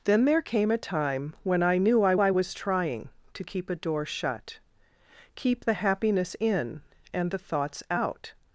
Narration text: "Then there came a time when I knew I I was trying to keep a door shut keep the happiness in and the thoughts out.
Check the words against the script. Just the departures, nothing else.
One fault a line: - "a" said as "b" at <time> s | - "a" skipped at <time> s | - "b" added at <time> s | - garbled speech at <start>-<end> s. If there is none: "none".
none